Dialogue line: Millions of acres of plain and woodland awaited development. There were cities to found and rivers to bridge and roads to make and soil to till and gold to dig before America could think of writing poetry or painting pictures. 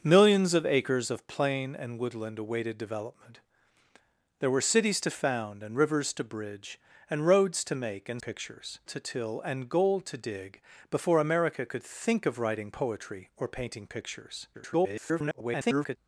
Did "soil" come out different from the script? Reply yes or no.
yes